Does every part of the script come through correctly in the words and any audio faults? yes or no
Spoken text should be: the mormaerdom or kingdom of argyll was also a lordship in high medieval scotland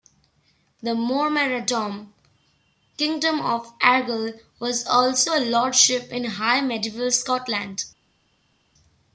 no